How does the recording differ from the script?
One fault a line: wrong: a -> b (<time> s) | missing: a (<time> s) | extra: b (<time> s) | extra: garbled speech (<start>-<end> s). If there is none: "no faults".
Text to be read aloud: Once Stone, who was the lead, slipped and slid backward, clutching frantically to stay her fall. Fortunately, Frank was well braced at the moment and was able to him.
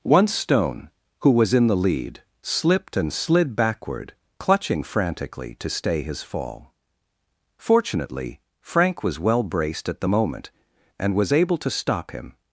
extra: in (1.5 s)
wrong: her -> his (6.0 s)
extra: stop (11.7 s)